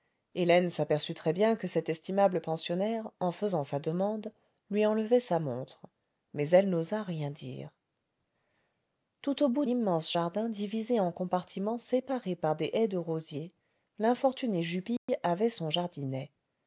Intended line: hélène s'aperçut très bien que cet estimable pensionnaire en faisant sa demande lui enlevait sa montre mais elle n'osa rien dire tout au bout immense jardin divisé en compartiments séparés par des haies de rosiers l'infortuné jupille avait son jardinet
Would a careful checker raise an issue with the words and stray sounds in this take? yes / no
yes